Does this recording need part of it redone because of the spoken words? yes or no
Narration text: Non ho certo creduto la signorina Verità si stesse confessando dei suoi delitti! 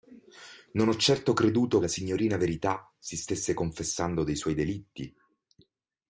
no